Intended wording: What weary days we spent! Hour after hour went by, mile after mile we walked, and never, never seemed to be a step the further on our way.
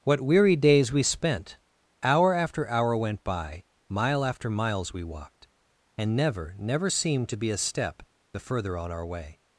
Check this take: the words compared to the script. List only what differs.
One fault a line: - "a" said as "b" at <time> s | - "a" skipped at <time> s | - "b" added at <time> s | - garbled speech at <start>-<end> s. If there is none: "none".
- "mile" said as "miles" at 4.5 s